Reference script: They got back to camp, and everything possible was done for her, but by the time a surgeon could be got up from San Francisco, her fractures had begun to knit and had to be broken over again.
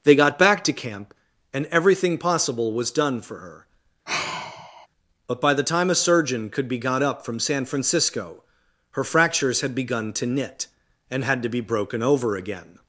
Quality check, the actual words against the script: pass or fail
pass